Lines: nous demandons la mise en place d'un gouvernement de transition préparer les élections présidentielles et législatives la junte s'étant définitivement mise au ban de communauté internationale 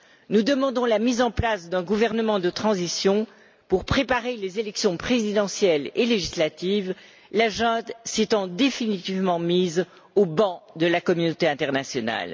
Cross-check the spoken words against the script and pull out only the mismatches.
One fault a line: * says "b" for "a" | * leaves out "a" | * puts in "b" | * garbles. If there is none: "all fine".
* puts in "pour"
* puts in "la"